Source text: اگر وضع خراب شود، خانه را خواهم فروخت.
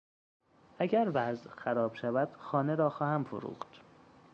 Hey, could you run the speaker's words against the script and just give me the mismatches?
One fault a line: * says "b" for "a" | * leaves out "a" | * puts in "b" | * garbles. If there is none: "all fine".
all fine